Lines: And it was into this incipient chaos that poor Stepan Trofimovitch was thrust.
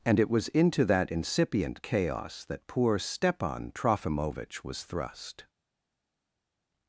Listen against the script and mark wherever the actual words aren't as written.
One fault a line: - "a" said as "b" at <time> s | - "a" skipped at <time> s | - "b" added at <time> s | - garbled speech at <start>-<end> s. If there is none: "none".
- "this" said as "that" at 0.8 s